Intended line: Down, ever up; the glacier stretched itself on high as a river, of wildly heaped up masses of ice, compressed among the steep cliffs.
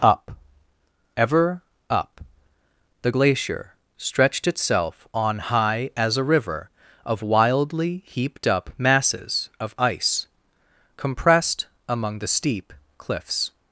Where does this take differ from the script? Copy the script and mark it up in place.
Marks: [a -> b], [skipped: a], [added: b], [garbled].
[Down, -> Up] ever up; the glacier stretched itself on high as a river, of wildly heaped up masses of ice, compressed among the steep cliffs.